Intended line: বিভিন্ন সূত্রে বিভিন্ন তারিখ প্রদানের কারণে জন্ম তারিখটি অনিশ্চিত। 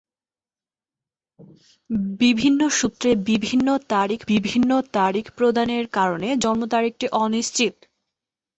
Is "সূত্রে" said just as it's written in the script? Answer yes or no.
yes